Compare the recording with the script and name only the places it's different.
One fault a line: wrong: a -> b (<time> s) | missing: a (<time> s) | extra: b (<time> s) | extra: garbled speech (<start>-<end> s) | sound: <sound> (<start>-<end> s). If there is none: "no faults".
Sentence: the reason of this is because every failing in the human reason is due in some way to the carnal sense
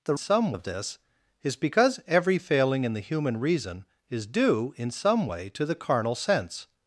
wrong: reason -> some (0.2 s)